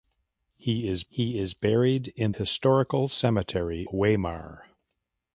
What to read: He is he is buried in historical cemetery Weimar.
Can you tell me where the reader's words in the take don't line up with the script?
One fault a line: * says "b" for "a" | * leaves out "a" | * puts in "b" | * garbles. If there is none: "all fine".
all fine